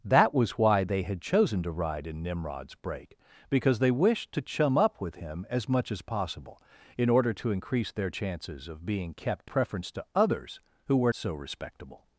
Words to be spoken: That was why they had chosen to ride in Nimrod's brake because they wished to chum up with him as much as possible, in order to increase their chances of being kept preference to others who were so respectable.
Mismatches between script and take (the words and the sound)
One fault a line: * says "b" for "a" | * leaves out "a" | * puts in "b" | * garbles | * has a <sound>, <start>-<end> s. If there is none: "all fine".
all fine